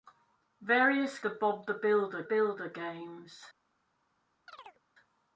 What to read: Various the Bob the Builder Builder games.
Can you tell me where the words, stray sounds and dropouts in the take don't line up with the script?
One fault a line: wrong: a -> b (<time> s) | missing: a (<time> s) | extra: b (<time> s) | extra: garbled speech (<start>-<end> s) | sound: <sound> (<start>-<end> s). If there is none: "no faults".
sound: chirp (4.5-4.8 s)